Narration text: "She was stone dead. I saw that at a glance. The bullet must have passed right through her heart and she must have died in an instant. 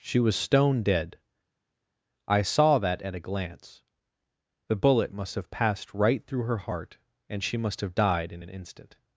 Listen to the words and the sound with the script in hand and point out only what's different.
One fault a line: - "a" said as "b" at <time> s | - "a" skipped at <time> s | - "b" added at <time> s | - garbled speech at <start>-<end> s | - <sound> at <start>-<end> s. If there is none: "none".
none